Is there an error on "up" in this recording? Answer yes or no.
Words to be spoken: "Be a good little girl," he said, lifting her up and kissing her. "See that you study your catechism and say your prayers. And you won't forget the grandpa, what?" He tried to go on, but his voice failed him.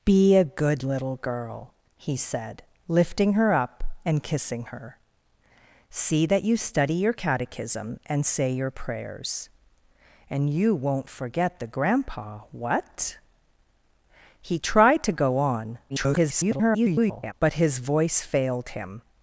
no